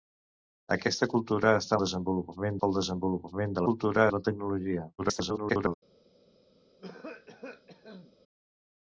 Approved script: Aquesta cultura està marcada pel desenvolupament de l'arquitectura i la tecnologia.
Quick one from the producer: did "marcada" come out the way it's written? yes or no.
no